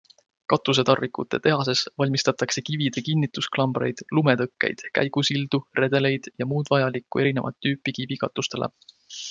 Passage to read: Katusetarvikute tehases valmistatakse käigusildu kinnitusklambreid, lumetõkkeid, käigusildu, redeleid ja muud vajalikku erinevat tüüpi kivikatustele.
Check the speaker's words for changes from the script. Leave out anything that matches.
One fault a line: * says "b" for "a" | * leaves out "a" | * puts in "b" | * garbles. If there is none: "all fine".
* says "kivide" for "käigusildu"